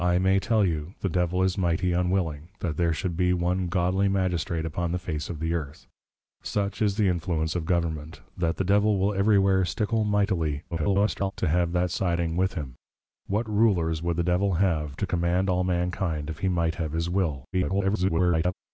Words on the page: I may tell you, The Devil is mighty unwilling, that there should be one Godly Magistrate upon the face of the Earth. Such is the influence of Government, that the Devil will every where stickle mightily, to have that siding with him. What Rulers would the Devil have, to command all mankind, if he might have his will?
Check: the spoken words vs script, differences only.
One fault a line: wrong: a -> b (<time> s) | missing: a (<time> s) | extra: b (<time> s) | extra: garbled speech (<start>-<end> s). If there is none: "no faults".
extra: garbled speech (10.7-11.3 s)
extra: garbled speech (17.5-18.5 s)